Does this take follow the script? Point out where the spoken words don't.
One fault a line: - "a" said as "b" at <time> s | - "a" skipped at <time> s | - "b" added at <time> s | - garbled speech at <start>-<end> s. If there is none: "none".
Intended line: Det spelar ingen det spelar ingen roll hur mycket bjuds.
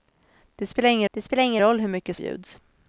none